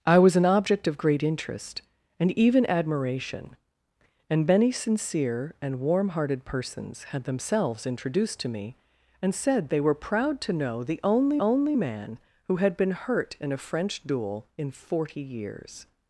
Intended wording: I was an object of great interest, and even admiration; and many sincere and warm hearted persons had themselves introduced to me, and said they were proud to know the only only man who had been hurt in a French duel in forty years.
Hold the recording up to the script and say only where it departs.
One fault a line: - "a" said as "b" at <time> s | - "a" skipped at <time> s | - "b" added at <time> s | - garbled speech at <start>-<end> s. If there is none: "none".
none